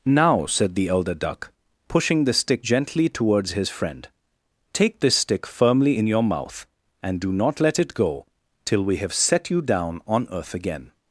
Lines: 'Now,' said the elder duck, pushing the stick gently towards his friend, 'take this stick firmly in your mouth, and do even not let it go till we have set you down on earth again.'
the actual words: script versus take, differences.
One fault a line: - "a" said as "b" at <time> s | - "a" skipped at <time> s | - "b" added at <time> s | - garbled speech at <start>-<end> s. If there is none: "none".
- "even" skipped at 7.3 s